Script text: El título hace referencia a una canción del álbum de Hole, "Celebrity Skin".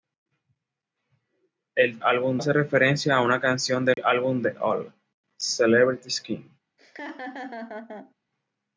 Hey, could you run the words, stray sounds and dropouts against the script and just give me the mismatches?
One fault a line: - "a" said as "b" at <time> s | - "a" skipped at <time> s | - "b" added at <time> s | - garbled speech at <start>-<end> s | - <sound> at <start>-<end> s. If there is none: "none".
- "título" said as "álbum" at 2.0 s
- dropout at 3.9-4.0 s
- laugh at 6.8-8.1 s